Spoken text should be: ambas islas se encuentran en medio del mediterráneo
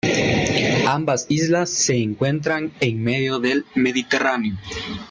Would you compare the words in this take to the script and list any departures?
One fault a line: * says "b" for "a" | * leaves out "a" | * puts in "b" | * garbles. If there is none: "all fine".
all fine